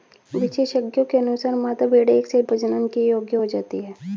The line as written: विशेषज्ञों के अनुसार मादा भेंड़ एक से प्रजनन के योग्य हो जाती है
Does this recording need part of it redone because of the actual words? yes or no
no